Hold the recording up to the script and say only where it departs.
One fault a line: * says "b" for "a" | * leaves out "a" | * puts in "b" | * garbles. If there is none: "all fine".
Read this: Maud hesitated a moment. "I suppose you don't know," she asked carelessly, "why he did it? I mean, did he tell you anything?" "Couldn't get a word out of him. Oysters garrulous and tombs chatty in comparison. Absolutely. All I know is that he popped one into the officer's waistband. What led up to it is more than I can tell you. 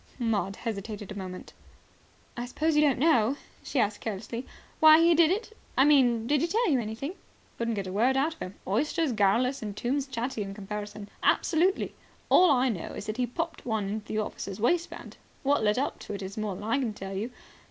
all fine